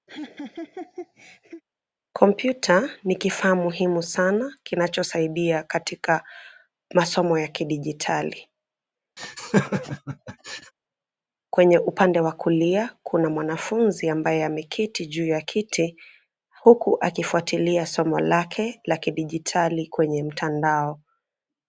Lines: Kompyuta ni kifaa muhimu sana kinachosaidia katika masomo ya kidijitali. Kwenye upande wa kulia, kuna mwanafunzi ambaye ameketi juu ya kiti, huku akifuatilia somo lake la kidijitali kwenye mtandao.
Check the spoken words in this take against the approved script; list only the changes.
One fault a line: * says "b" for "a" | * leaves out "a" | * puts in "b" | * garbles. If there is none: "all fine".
all fine